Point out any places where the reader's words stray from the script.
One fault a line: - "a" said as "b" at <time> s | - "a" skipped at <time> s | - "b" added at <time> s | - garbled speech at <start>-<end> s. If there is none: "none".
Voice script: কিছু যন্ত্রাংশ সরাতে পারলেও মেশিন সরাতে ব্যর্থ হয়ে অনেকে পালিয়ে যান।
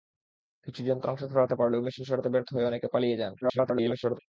- garbled speech at 3.4-4.2 s